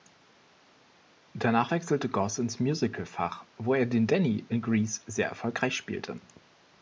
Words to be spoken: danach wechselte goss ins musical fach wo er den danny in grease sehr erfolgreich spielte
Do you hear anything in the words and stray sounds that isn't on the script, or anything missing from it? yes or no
no